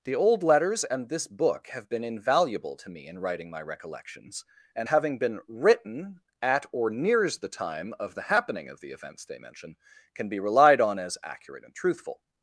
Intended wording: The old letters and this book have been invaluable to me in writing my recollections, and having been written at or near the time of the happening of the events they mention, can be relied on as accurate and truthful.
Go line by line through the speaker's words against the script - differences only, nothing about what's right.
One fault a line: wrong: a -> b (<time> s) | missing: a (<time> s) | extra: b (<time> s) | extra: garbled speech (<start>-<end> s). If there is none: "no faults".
wrong: near -> nears (6.9 s)